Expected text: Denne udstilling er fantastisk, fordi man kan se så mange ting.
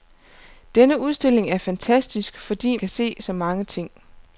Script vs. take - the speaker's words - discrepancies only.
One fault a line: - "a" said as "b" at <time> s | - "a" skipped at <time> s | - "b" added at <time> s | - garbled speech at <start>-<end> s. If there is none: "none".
- "man" skipped at 2.8 s